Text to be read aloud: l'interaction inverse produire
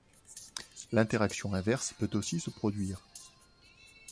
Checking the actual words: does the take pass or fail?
fail